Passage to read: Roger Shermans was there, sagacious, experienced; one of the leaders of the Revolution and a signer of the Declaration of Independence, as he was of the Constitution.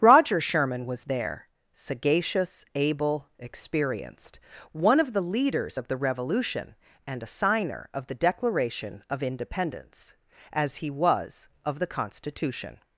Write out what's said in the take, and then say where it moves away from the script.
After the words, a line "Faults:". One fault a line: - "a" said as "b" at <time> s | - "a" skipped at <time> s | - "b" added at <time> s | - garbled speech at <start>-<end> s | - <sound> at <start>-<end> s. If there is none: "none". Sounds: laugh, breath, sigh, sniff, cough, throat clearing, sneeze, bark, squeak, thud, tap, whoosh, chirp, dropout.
Roger Sherman was there, sagacious, able, experienced; one of the leaders of the Revolution and a signer of the Declaration of Independence, as he was of the Constitution.
Faults:
- "Shermans" said as "Sherman" at 0.4 s
- "able" added at 2.7 s